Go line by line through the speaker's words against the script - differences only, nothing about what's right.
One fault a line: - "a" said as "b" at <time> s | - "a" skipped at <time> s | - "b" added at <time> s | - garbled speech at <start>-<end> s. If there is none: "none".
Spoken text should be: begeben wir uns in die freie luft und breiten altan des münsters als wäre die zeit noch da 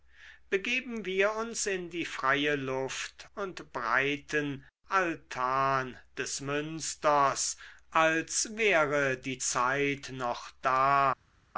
none